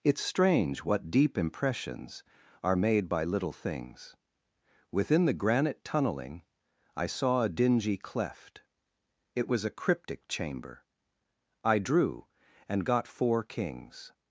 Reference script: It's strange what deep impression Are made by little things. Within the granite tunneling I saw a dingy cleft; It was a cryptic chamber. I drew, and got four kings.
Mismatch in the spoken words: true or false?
true